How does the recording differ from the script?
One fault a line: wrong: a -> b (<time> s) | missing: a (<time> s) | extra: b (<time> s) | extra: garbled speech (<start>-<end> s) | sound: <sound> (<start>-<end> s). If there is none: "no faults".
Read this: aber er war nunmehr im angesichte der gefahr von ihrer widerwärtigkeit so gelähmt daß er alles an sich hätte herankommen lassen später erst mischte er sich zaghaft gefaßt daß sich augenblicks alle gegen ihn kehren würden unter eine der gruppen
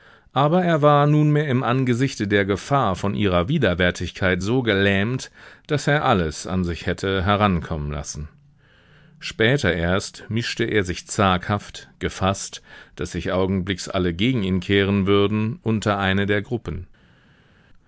no faults